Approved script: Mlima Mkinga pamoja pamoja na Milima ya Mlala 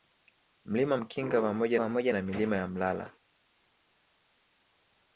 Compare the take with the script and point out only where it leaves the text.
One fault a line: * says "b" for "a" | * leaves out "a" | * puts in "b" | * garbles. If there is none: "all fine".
all fine